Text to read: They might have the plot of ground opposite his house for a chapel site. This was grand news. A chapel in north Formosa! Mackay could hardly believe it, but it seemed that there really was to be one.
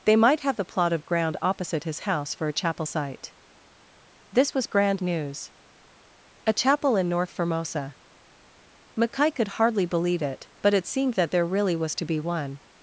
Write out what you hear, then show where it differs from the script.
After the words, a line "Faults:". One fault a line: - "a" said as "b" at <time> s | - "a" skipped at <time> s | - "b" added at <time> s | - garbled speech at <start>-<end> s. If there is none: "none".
They might have the plot of ground opposite his house for a chapel site. This was grand news. A chapel in north Formosa! Mackay could hardly believe it, but it seemed that there really was to be one.
Faults:
none